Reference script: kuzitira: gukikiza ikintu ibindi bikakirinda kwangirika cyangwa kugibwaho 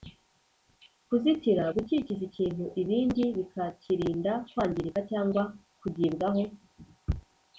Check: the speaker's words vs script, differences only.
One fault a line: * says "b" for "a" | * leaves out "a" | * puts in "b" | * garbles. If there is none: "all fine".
all fine